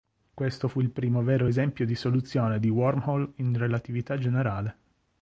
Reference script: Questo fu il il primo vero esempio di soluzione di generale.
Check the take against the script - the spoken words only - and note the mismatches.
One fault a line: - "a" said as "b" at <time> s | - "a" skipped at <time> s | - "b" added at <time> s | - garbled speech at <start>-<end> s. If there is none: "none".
- "il" skipped at 0.9 s
- "wormhole in relatività" added at 2.7 s